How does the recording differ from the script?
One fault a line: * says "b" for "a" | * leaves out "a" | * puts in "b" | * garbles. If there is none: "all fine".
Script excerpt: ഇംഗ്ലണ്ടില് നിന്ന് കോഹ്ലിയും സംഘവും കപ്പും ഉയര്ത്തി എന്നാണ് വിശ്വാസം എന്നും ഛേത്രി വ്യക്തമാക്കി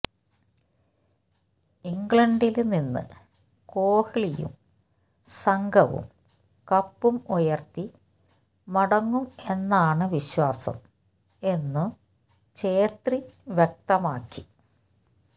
* puts in "മടങ്ങും"